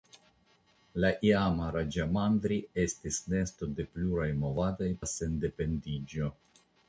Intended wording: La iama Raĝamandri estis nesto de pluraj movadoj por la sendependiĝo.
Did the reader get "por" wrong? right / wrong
wrong